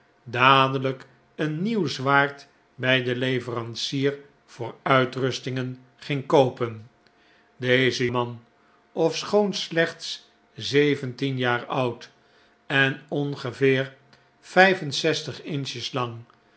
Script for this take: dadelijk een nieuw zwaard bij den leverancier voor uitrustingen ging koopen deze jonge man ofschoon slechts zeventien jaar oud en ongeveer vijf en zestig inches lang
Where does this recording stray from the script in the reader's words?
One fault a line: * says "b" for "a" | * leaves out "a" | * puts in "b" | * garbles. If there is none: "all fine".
* leaves out "jonge"